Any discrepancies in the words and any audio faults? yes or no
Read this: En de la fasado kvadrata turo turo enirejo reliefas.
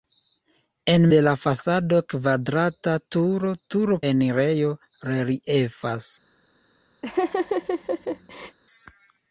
yes